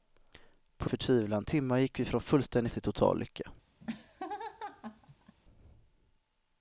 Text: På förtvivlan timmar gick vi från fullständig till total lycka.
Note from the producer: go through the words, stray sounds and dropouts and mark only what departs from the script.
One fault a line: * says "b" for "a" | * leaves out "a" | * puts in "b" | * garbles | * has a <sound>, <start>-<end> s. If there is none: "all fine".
* has a laugh, 3.8-5.4 s